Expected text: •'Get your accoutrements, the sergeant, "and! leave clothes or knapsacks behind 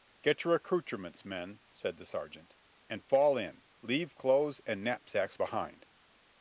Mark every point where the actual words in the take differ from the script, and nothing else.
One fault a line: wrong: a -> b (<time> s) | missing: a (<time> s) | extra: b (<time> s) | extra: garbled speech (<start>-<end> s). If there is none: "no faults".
extra: men said (1.2 s)
extra: fall in (3.0 s)
wrong: or -> and (4.6 s)